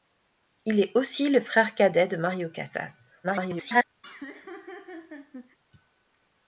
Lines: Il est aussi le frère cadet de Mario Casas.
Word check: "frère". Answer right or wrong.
right